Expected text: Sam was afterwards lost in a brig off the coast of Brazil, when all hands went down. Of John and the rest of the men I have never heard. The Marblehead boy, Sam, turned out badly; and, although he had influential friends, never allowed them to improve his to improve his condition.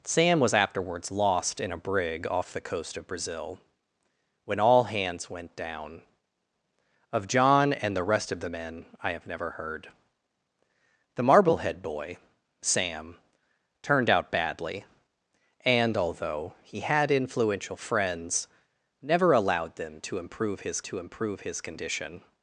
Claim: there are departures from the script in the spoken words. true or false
false